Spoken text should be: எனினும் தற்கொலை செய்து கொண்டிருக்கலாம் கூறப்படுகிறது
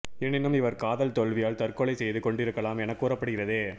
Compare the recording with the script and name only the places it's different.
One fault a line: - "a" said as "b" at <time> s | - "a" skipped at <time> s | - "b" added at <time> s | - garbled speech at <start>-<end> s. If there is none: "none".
- "இவர் காதல் தோல்வியால்" added at 0.5 s
- "என" added at 2.8 s